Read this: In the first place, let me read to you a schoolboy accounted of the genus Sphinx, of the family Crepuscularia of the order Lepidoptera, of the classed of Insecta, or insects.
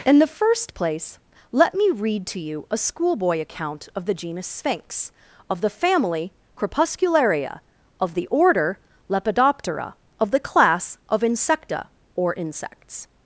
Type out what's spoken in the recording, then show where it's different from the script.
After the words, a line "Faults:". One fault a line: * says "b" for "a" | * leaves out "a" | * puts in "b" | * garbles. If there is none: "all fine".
In the first place, let me read to you a schoolboy account of the genus Sphinx, of the family Crepuscularia of the order Lepidoptera, of the class of Insecta, or insects.
Faults:
* says "account" for "accounted"
* says "class" for "classed"